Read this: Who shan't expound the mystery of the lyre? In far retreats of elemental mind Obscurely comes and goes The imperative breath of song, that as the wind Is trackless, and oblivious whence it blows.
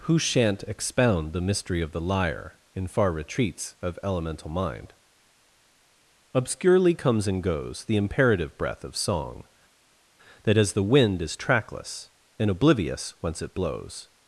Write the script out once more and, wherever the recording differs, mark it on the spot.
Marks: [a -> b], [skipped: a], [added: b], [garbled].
Who shan't expound the mystery of the lyre? In far retreats of elemental mind Obscurely comes and goes The imperative breath of song, that as the wind Is trackless, and oblivious whence it blows.